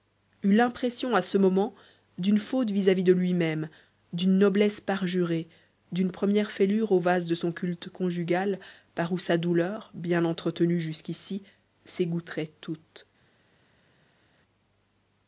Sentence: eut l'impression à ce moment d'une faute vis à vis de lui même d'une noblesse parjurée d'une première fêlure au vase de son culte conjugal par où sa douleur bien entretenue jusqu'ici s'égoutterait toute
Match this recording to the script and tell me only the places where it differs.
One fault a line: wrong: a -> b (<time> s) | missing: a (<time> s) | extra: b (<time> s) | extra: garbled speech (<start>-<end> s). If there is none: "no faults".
no faults